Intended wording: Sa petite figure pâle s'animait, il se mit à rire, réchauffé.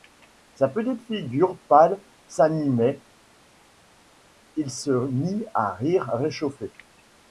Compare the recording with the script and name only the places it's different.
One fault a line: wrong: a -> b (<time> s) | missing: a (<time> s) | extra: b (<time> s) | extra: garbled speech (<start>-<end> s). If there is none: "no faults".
no faults